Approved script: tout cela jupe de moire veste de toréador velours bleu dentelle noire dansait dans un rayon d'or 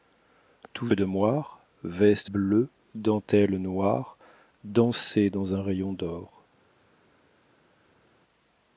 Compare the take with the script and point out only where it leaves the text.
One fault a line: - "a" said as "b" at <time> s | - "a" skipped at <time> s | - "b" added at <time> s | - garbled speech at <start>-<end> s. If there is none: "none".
- "cela jupe" skipped at 0.9 s
- "de toréador velours" skipped at 2.3 s